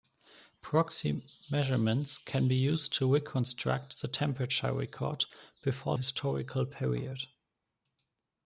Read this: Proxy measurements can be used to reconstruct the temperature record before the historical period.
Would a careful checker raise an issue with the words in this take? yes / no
yes